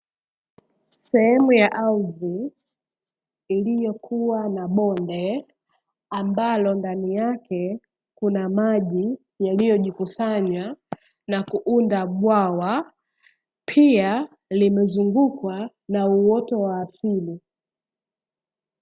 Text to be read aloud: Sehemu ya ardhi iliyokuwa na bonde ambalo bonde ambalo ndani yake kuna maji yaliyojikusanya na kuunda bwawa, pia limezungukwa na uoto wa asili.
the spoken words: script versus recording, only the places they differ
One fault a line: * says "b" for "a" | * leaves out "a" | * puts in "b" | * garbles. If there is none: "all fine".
* leaves out "bonde ambalo"